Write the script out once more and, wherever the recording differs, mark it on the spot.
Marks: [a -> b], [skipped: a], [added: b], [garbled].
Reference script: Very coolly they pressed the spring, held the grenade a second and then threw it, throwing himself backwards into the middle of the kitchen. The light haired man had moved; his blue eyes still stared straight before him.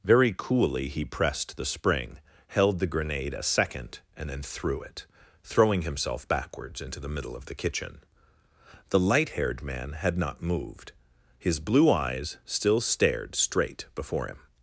Very coolly [they -> he] pressed the spring, held the grenade a second and then threw it, throwing himself backwards into the middle of the kitchen. The light haired man had [added: not] moved; his blue eyes still stared straight before him.